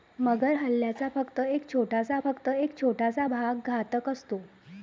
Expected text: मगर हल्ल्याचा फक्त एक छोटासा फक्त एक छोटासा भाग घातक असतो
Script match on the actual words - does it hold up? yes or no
yes